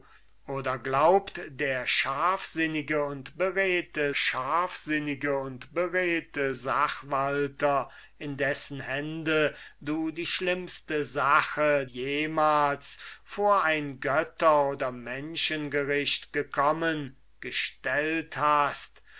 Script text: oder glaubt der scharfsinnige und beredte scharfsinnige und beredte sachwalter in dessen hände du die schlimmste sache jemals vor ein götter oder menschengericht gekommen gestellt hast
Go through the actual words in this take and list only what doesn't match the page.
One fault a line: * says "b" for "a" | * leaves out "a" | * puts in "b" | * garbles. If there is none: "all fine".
all fine